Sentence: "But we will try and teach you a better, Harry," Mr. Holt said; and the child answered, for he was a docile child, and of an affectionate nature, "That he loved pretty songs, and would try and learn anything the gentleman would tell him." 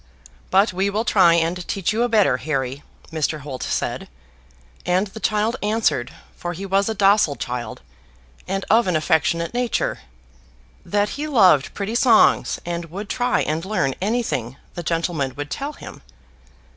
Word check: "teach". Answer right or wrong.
right